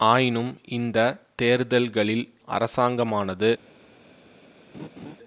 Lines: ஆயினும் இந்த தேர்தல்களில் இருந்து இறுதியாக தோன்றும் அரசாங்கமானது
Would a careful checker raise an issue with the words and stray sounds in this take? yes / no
yes